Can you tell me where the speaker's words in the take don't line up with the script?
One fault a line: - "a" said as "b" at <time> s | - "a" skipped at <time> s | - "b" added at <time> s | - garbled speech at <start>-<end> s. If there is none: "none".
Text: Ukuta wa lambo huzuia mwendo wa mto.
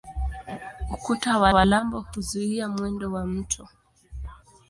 - "wa" added at 1.5 s